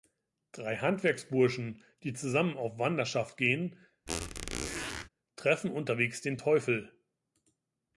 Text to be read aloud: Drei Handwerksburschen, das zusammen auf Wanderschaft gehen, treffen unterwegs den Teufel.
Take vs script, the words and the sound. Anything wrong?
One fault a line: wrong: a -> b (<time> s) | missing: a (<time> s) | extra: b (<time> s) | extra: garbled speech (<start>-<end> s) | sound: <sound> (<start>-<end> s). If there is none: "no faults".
wrong: das -> die (2.0 s)
sound: squeak (4.1-5.1 s)